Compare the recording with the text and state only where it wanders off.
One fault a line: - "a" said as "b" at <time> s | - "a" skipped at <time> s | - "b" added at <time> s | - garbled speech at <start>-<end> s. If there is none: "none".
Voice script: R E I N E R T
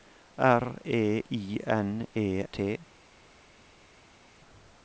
- "R" skipped at 2.4 s